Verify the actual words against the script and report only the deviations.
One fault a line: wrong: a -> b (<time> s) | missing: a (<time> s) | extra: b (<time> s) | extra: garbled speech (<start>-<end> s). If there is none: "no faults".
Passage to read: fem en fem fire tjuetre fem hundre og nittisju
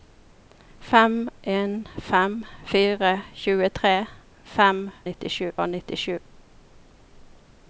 wrong: hundre -> nittisju (5.1 s)